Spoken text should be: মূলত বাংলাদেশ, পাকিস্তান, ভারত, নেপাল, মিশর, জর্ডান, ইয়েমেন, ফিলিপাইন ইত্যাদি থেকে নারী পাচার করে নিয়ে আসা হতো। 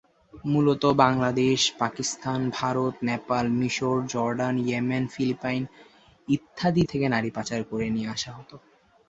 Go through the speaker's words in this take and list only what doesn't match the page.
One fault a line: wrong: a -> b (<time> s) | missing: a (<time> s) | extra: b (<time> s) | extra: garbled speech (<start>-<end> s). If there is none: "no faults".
no faults